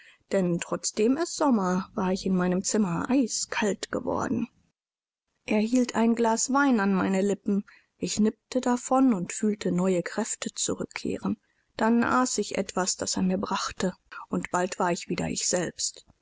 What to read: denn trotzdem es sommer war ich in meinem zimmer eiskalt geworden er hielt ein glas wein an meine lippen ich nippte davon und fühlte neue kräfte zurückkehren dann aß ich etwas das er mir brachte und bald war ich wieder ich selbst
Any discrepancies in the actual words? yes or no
no